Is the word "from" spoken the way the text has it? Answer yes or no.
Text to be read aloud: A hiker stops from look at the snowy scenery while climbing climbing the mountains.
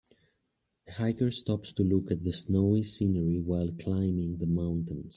no